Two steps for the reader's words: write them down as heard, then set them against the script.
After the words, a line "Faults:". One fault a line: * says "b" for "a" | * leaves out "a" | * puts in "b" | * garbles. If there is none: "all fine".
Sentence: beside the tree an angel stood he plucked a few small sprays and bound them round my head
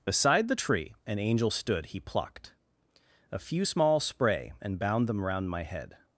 beside the tree an angel stood he plucked a few small spray and bound them round my head
Faults:
* says "spray" for "sprays"